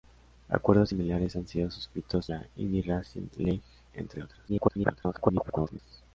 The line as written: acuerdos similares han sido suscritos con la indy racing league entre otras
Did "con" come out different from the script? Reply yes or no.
yes